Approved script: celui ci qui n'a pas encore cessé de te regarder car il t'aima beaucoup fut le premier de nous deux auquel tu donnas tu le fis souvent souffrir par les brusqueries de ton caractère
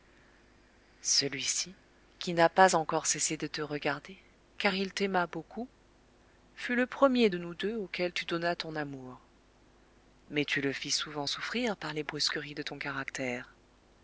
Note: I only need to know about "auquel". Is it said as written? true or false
true